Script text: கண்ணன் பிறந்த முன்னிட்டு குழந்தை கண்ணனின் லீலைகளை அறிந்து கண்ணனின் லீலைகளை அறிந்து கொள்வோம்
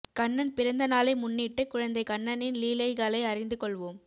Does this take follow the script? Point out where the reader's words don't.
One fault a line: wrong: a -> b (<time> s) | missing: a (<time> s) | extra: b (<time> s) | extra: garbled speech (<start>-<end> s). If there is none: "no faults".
extra: நாளை (0.9 s)
missing: கண்ணனின் லீலைகளை அறிந்து (3.6 s)